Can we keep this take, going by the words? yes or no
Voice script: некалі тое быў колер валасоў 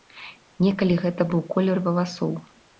no